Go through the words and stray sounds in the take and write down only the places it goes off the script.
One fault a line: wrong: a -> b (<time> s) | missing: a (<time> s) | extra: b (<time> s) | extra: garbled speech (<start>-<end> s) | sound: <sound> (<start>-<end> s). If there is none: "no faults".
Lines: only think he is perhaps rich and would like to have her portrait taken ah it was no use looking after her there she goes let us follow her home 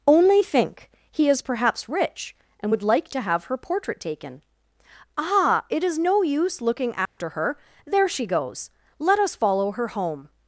wrong: was -> is (5.8 s)
sound: dropout (7.1-7.2 s)